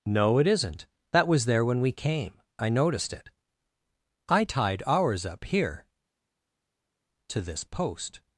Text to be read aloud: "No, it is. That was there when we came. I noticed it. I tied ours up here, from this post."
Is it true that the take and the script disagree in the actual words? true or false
true